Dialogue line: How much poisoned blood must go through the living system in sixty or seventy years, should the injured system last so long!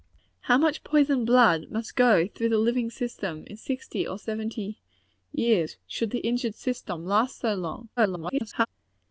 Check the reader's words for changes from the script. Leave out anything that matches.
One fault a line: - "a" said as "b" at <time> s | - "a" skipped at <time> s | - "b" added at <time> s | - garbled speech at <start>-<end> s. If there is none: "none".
- garbled speech at 8.0-8.7 s